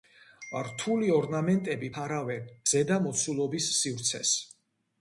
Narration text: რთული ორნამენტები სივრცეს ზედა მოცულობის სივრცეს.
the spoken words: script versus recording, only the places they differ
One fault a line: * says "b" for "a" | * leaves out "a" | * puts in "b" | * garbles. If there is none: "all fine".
* says "ფარავენ" for "სივრცეს"